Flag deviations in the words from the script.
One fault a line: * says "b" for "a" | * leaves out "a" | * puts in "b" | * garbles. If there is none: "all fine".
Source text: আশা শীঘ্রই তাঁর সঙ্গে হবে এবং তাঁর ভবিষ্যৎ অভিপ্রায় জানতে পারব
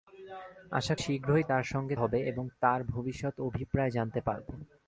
all fine